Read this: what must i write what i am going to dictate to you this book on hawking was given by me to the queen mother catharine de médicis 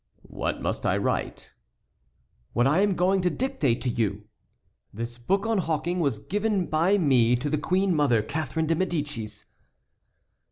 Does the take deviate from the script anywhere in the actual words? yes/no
no